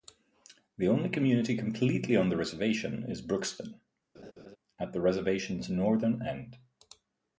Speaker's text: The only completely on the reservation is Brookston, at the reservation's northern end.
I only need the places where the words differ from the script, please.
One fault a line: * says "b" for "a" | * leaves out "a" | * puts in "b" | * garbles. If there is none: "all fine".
* puts in "community"